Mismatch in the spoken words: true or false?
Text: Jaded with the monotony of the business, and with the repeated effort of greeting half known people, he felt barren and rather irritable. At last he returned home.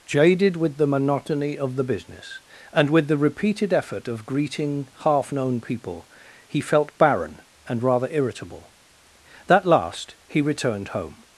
true